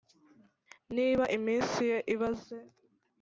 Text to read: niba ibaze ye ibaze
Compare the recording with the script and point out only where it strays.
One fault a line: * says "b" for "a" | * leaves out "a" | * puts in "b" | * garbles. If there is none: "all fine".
* says "iminsi" for "ibaze"